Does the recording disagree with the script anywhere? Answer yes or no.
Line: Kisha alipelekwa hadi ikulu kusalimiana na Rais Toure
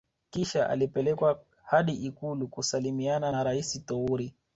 no